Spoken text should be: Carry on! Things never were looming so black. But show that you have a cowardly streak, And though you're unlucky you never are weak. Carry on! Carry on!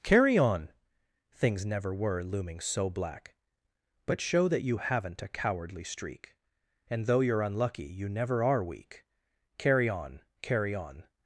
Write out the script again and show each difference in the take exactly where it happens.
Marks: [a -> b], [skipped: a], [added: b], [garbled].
Carry on! Things never were looming so black. But show that you [have -> haven't] a cowardly streak, And though you're unlucky you never are weak. Carry on! Carry on!